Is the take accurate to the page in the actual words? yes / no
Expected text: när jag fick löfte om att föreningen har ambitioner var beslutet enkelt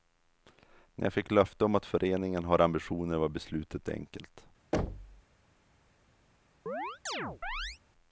yes